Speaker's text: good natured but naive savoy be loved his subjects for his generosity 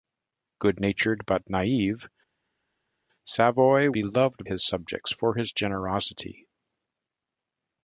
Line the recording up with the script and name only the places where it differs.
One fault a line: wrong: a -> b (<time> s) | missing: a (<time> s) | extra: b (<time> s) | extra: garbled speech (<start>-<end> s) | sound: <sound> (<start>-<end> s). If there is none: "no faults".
no faults